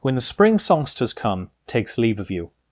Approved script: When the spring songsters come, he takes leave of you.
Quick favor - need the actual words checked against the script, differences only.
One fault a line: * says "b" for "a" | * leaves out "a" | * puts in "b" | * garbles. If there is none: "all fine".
* leaves out "he"